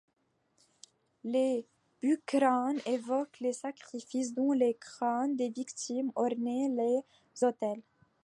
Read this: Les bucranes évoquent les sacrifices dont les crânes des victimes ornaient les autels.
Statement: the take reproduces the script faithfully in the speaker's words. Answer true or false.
true